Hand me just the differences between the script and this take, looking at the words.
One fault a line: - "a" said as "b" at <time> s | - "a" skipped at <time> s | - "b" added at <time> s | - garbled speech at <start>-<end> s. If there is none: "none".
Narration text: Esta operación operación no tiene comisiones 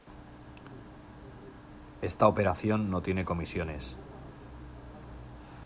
- "operación" skipped at 2.9 s